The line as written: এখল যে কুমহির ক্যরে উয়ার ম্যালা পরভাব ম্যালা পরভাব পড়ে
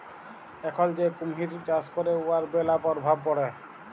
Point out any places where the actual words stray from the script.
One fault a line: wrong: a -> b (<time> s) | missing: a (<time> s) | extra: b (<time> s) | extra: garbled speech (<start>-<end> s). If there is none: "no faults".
extra: চাষ (1.7 s)
missing: ম্যালা পরভাব (3.2 s)